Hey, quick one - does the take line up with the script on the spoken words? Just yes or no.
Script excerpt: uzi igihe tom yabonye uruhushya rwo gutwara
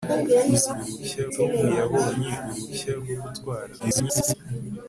no